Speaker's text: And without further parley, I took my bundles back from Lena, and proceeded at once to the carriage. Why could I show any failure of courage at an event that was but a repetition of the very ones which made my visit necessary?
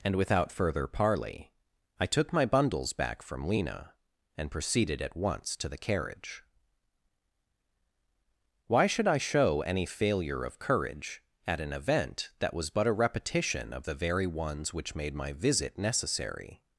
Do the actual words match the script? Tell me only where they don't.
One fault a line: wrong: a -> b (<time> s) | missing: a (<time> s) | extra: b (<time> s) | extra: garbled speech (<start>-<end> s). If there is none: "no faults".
wrong: could -> should (8.9 s)